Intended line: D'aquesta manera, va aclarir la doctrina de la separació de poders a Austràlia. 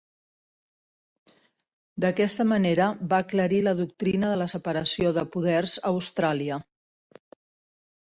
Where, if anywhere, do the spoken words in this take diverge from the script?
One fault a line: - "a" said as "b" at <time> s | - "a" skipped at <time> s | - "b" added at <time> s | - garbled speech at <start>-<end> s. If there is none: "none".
none